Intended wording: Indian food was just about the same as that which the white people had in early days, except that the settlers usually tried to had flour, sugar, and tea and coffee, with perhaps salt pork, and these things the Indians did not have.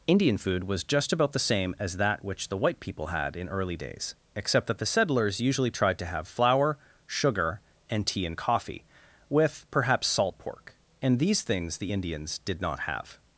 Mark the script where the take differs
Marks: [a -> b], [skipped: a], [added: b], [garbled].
Indian food was just about the same as that which the white people had in early days, except that the settlers usually tried to [had -> have] flour, sugar, and tea and coffee, with perhaps salt pork, and these things the Indians did not have.